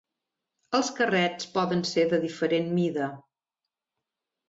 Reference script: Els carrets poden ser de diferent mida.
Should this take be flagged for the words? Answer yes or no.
no